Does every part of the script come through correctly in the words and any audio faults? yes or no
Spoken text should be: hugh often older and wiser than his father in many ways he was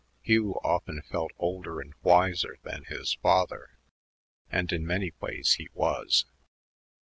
no